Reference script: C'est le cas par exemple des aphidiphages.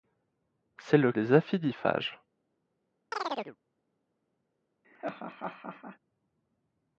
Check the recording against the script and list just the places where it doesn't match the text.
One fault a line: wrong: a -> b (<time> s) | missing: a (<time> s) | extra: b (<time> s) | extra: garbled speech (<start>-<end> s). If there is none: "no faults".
missing: cas par exemple (1.1 s)